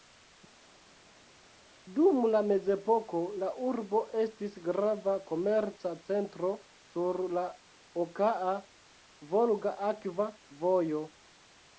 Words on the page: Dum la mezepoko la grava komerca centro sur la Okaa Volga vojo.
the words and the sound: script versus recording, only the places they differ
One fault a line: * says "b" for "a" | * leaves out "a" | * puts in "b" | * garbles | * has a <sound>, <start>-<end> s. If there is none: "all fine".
* puts in "urbo estis"
* puts in "akva"